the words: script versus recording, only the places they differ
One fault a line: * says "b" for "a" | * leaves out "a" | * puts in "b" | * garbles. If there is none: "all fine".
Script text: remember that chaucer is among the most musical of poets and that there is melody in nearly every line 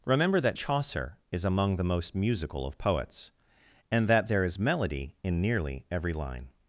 all fine